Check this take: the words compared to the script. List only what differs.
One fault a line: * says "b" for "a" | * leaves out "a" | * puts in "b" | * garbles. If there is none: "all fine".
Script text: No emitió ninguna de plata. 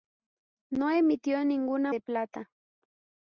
all fine